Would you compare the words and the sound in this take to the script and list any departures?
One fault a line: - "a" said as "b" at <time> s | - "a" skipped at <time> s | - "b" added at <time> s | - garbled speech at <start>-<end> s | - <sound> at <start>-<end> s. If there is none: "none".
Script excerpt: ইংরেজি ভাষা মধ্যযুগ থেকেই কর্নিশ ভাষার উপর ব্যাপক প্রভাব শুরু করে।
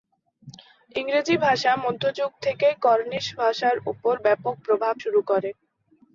none